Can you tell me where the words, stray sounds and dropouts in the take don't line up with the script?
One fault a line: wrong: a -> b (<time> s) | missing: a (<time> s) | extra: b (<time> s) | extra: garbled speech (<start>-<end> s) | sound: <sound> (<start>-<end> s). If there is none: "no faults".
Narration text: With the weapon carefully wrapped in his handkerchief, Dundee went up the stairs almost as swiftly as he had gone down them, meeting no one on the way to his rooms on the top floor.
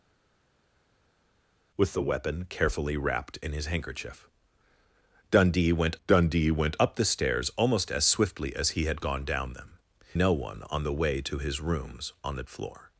extra: Dundee went (6.1 s)
missing: meeting (9.8 s)
missing: top (12.4 s)